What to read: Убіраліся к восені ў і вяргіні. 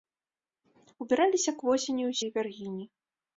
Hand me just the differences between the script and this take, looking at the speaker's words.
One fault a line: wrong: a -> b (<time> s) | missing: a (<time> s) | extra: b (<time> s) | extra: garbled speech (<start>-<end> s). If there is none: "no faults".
no faults